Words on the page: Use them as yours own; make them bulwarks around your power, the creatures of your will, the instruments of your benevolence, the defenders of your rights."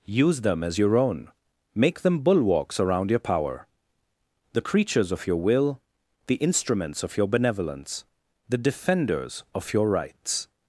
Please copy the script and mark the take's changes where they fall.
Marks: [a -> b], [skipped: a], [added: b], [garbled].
Use them as [yours -> your] own; make them bulwarks around your power, the creatures of your will, the instruments of your benevolence, the defenders of your rights."